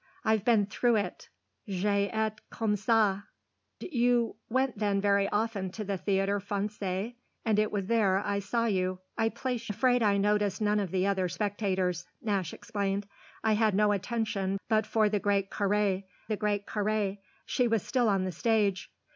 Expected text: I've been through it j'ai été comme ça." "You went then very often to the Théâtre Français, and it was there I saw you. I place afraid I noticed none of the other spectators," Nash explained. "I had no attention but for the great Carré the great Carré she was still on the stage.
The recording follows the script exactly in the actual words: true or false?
true